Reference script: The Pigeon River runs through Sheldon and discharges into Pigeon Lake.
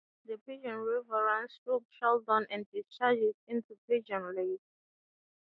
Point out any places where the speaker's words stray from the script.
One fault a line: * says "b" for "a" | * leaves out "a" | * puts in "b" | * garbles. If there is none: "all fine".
all fine